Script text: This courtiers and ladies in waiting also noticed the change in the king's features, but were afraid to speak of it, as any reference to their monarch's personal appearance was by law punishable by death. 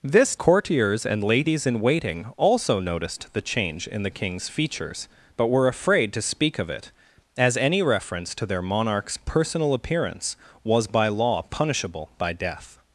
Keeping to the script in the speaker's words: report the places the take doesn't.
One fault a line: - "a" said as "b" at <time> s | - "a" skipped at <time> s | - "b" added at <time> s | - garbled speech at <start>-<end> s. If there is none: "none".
none